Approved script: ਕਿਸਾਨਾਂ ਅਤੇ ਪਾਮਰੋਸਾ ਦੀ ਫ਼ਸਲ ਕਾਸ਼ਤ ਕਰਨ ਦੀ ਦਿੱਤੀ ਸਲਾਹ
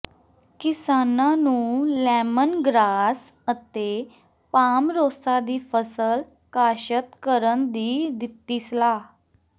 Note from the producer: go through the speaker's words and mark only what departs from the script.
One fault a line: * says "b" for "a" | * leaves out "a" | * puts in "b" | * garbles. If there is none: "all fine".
* puts in "ਨੂੰ ਲੈਮਨ ਗ੍ਰਾਸ"